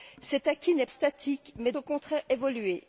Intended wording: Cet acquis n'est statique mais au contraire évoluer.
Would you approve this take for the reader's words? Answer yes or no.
yes